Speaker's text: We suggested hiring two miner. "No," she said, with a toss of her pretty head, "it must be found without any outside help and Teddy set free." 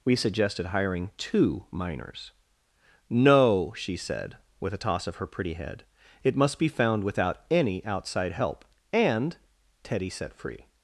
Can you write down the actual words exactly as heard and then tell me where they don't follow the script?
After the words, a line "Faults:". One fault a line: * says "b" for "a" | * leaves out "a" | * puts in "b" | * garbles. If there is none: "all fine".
We suggested hiring two miners. "No," she said, with a toss of her pretty head, "it must be found without any outside help and Teddy set free."
Faults:
* says "miners" for "miner"